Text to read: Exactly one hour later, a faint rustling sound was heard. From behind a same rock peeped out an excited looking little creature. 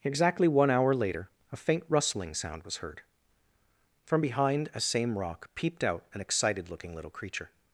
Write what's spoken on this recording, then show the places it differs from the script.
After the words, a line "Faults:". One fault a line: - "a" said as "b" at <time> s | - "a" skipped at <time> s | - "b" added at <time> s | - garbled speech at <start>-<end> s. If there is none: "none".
Exactly one hour later, a faint rustling sound was heard. From behind a same rock peeped out an excited looking little creature.
Faults:
none